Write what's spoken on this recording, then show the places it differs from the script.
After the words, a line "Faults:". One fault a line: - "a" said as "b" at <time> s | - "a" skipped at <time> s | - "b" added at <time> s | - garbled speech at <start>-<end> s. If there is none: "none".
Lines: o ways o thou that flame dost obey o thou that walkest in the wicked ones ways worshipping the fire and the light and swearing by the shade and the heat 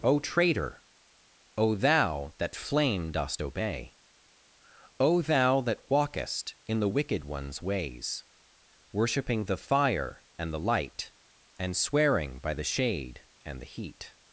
o traitor o thou that flame dost obey o thou that walkest in the wicked ones ways worshipping the fire and the light and swearing by the shade and the heat
Faults:
- "ways" said as "traitor" at 0.2 s